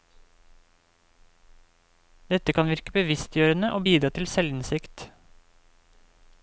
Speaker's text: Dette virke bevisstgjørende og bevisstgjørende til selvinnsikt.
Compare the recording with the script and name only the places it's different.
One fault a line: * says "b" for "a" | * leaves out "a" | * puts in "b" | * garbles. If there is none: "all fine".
* puts in "kan"
* says "bidra" for "bevisstgjørende"